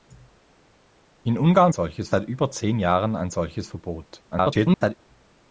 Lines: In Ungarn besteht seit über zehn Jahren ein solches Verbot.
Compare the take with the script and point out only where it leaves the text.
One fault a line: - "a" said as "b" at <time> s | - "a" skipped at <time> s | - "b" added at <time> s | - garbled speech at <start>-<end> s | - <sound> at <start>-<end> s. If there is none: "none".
- "besteht" said as "solches" at 1.7 s
- garbled speech at 4.3-4.9 s